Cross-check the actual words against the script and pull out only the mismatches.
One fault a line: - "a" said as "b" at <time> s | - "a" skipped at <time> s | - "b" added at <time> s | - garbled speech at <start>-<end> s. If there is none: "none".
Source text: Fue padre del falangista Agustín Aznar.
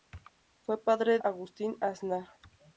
- "del falangista" skipped at 1.2 s